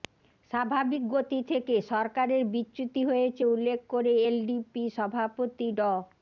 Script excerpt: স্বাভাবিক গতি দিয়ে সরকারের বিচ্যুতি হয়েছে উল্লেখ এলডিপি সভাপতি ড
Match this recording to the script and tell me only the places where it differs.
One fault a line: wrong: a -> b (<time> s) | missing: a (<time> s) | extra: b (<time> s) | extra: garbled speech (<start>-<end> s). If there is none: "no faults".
wrong: দিয়ে -> থেকে (1.5 s)
extra: করে (3.9 s)